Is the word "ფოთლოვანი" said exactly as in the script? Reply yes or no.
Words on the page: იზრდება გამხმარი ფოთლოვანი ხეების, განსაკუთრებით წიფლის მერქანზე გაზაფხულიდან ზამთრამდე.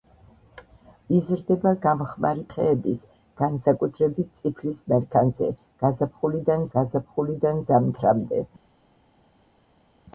no